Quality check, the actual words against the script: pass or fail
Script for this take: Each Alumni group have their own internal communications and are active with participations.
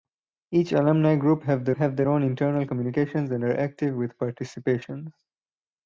fail